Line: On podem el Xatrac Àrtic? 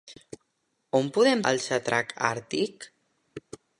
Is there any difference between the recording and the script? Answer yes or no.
no